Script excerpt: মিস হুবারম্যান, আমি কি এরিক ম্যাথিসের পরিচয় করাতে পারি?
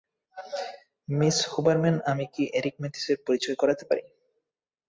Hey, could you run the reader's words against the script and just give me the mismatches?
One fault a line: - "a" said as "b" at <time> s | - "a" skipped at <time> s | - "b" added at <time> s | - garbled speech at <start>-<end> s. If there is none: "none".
none